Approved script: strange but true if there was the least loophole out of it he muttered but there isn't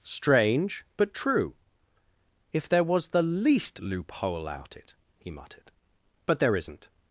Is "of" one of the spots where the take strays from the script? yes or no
yes